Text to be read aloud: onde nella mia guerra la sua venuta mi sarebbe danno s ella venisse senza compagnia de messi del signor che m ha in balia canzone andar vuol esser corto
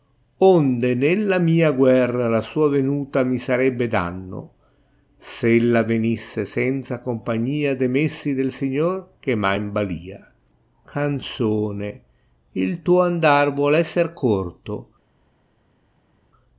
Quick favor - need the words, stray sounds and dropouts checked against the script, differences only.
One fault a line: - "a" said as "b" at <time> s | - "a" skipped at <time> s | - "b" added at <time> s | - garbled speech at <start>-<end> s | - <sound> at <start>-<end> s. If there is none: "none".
- "il tuo" added at 12.5 s